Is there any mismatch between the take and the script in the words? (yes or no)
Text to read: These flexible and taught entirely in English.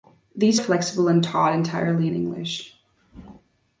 no